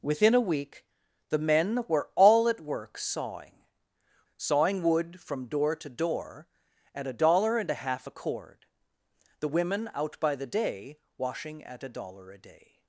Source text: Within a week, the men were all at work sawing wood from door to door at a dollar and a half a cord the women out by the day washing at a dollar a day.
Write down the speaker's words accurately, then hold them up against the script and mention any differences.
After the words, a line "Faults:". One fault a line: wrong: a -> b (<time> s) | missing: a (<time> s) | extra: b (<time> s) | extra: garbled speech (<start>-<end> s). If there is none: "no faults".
Within a week, the men were all at work sawing sawing wood from door to door at a dollar and a half a cord the women out by the day washing at a dollar a day.
Faults:
extra: sawing (4.3 s)